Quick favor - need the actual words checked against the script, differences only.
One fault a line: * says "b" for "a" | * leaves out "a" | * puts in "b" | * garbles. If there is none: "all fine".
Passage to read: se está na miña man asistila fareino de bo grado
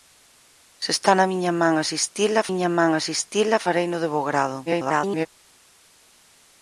* puts in "miña man asistila"
* garbles